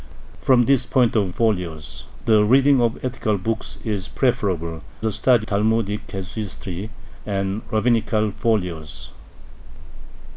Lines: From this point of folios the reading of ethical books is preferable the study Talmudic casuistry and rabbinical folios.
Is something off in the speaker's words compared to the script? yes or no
no